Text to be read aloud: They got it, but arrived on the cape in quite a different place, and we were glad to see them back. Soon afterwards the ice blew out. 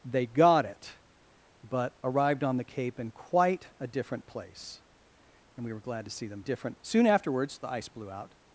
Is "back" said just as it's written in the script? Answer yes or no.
no